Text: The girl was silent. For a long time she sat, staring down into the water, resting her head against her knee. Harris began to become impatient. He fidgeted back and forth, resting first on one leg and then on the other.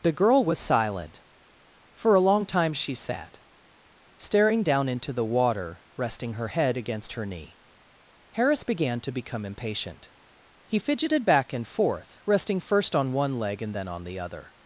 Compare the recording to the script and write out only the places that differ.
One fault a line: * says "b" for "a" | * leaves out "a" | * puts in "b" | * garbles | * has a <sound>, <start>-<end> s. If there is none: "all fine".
all fine